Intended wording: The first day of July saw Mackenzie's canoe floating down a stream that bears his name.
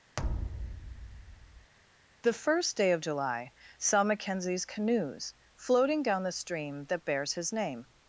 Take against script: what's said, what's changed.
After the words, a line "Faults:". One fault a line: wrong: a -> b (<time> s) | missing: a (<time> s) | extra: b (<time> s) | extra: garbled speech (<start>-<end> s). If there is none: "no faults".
The first day of July saw Mackenzie's canoes floating down the stream that bears his name.
Faults:
wrong: canoe -> canoes (4.7 s)
wrong: a -> the (6.2 s)